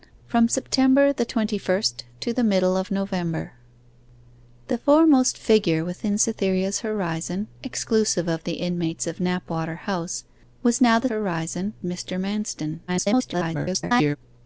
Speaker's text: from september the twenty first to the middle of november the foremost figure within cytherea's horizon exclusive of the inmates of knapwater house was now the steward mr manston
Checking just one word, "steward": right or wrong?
wrong